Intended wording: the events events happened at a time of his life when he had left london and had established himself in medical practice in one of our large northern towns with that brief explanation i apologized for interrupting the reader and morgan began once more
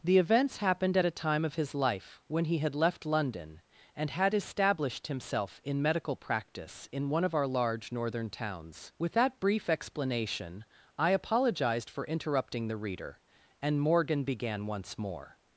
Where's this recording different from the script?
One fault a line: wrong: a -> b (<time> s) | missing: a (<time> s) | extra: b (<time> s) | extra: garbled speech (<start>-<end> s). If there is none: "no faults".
missing: events (0.6 s)